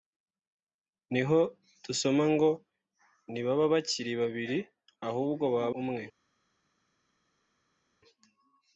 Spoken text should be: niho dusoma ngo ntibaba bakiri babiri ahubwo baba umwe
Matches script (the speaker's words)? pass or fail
pass